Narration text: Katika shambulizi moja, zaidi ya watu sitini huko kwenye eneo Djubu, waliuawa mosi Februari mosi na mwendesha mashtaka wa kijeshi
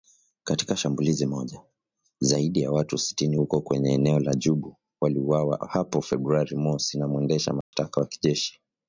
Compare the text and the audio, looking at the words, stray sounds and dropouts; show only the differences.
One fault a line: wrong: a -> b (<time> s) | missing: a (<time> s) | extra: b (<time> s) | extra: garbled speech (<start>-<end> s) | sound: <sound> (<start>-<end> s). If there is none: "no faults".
extra: la (4.2 s)
wrong: mosi -> hapo (5.7 s)
sound: dropout (7.6-7.7 s)